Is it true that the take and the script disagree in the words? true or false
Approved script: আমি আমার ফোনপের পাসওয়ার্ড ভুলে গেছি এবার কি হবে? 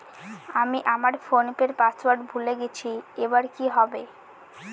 false